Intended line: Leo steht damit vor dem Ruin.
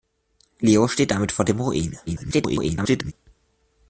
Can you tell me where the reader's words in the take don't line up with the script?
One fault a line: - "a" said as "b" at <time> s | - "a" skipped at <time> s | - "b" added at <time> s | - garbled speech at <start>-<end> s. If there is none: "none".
- garbled speech at 2.1-3.1 s